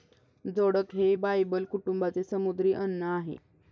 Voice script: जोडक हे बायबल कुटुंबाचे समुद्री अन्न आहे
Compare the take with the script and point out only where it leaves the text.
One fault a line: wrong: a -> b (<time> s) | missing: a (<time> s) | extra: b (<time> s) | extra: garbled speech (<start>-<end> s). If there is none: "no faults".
no faults